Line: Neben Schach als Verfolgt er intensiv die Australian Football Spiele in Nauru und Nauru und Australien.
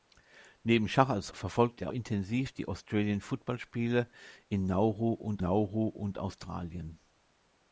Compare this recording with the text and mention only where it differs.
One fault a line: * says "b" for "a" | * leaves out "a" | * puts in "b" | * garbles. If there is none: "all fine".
all fine